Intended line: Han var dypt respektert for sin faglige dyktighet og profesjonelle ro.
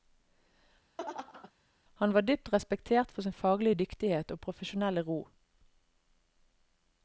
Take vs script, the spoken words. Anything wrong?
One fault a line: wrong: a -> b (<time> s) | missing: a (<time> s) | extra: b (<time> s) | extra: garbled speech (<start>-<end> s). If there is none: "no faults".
no faults